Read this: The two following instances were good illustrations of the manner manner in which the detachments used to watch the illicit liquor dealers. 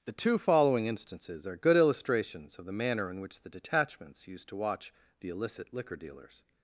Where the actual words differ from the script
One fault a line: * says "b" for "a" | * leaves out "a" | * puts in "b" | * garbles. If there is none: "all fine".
* says "are" for "were"
* leaves out "manner"